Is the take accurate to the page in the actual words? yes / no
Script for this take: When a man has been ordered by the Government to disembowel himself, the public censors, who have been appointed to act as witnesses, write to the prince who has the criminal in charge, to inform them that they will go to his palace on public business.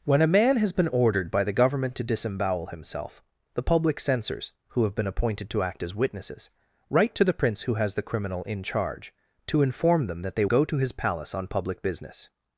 no